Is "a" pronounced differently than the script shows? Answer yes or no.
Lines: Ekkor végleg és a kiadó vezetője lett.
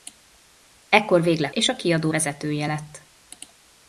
no